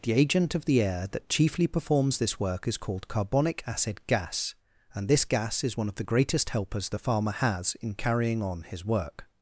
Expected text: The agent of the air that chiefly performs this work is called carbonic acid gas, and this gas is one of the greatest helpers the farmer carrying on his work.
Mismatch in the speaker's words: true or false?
true